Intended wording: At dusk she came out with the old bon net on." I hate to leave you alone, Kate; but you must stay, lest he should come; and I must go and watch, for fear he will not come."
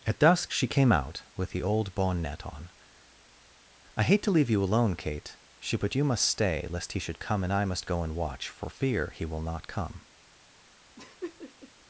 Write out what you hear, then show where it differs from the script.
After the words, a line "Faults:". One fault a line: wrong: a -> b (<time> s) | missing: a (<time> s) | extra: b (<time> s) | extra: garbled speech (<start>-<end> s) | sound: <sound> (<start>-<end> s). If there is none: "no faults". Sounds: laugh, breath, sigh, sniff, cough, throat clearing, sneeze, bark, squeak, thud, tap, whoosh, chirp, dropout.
At dusk she came out with the old bon net on." I hate to leave you alone, Kate; she but you must stay, lest he should come; and I must go and watch, for fear he will not come."
Faults:
extra: she (5.6 s)
sound: laugh (11.0-11.7 s)